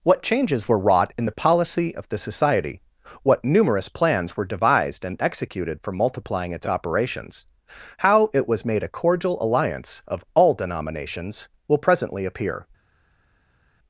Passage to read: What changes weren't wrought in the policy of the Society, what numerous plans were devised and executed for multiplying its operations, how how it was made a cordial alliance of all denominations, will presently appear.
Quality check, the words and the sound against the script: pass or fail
fail